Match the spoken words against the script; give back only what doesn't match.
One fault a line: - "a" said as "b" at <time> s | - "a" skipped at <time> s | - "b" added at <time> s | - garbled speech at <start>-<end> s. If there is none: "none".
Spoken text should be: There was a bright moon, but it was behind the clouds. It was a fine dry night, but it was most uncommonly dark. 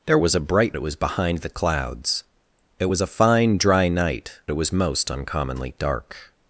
- "moon but" skipped at 0.8 s
- "but" skipped at 4.4 s